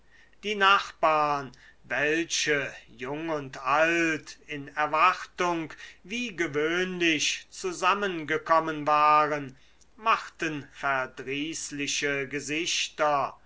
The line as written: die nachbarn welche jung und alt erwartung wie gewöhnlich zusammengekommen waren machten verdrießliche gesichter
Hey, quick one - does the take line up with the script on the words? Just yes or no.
no